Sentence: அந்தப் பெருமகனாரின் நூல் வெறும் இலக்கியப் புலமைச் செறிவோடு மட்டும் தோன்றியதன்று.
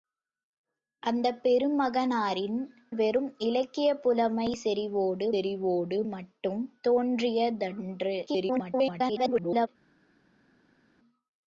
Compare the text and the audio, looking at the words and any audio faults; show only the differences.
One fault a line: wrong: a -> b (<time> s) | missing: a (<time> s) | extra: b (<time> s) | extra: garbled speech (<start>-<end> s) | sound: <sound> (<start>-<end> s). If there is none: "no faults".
missing: நூல் (2.6 s)
extra: செறிவோடு (5.3 s)
extra: garbled speech (8.3-9.7 s)